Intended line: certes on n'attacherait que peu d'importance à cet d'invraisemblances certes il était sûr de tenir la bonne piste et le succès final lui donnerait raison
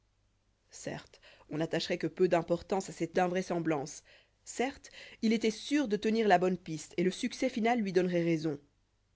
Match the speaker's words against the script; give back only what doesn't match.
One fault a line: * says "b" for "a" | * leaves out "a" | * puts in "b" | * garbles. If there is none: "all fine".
all fine